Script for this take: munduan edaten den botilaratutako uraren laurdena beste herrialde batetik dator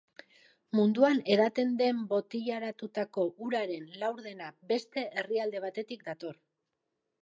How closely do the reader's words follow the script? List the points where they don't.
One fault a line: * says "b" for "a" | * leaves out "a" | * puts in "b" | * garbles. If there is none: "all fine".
all fine